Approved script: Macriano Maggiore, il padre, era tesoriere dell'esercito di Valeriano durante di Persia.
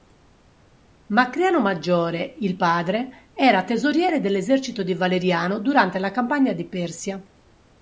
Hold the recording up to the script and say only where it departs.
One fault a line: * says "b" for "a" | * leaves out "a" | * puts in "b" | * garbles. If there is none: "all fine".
* puts in "la campagna"